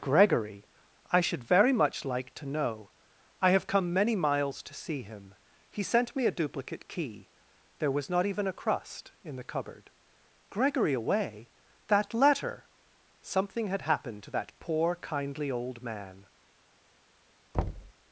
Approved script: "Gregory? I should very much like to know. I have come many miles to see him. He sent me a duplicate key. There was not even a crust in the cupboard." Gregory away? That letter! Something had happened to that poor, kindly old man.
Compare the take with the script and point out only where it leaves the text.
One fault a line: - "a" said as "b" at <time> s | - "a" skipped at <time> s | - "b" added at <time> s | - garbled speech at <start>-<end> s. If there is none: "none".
none